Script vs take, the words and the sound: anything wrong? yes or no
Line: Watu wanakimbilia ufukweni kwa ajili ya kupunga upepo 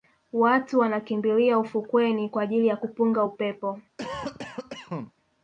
yes